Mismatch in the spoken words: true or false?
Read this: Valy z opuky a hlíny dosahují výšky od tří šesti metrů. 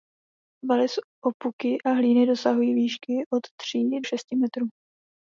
false